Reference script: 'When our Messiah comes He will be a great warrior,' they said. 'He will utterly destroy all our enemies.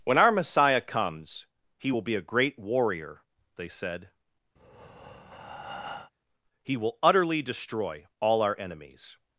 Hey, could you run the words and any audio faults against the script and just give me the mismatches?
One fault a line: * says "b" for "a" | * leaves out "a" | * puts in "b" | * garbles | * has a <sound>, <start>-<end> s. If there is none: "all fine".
* has a breath, 4.6-6.1 s